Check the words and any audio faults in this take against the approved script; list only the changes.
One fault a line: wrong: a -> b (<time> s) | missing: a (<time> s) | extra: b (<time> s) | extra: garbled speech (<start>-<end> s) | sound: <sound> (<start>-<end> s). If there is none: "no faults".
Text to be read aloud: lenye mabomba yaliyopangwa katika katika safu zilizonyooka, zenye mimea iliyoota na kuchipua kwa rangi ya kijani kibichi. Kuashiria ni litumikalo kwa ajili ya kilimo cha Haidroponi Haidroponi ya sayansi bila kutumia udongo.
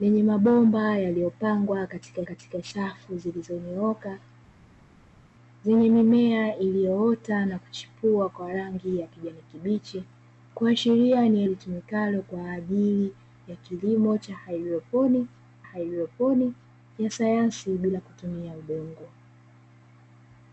no faults